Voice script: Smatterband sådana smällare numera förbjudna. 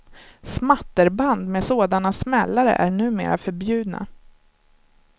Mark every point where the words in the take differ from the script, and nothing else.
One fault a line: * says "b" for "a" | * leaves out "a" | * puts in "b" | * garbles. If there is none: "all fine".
* puts in "med"
* puts in "är"